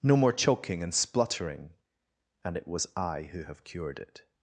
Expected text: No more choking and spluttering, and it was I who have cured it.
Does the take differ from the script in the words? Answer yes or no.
no